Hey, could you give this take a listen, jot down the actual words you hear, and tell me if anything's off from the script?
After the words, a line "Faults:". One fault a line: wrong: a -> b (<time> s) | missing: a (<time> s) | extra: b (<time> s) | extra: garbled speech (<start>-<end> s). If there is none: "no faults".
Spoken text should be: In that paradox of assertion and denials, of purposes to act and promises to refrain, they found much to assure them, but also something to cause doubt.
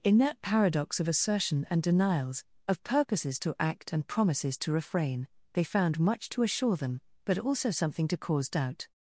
In that paradox of assertion and denials, of purposes to act and promises to refrain, they found much to assure them, but also something to cause doubt.
Faults:
no faults